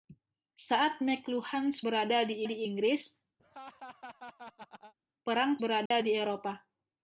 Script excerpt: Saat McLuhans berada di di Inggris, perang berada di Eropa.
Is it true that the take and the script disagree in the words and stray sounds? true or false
true